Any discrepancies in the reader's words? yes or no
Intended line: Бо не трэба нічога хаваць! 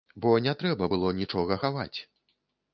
yes